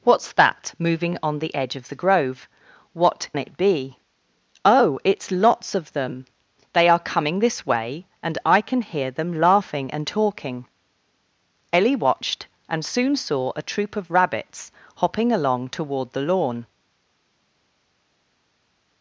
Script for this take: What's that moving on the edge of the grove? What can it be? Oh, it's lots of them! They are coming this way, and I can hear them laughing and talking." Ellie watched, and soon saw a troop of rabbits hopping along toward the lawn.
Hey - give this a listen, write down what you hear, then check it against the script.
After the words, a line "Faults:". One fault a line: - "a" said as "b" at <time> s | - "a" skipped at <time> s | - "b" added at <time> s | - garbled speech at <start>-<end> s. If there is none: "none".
What's that moving on the edge of the grove? What it be? Oh, it's lots of them! They are coming this way, and I can hear them laughing and talking." Ellie watched, and soon saw a troop of rabbits hopping along toward the lawn.
Faults:
- "can" skipped at 3.3 s